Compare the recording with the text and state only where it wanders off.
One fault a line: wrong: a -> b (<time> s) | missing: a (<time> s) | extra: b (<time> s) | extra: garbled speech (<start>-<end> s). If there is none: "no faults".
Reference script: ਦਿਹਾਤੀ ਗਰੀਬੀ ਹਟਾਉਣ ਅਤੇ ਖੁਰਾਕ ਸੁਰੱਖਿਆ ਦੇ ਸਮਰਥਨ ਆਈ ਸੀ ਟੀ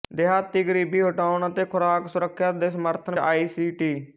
no faults